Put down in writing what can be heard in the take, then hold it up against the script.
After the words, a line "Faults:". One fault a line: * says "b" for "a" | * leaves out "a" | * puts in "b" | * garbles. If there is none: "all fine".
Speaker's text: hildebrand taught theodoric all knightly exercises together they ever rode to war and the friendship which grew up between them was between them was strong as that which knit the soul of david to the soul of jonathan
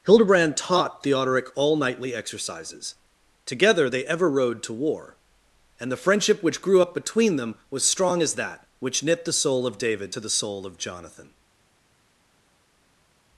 hildebrand taught theodoric all knightly exercises together they ever rode to war and the friendship which grew up between them was strong as that which knit the soul of david to the soul of jonathan
Faults:
* leaves out "between them was"